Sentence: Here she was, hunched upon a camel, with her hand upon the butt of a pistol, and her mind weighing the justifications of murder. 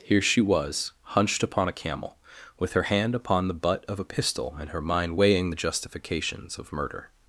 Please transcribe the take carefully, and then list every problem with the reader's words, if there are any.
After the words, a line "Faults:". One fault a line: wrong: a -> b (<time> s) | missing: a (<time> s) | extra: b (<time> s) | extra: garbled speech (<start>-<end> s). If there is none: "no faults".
Here she was, hunched upon a camel, with her hand upon the butt of a pistol, and her mind weighing the justifications of murder.
Faults:
no faults